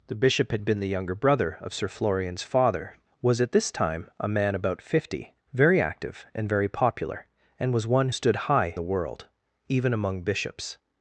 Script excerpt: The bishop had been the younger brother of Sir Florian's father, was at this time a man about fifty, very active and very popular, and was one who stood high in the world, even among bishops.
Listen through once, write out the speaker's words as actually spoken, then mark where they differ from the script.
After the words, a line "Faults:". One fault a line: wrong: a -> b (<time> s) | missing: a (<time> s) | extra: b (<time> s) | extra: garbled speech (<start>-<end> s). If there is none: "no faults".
The bishop had been the younger brother of Sir Florian's father, was at this time a man about fifty, very active and very popular, and was one stood high the world, even among bishops.
Faults:
missing: who (8.1 s)
missing: in (8.7 s)